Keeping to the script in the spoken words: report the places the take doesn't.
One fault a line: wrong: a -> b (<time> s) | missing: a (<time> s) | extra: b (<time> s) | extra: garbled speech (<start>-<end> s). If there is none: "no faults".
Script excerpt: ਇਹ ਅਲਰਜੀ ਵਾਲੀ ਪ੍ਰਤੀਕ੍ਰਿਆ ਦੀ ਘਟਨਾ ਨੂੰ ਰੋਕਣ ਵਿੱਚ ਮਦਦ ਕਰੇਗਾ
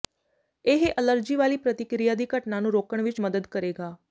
no faults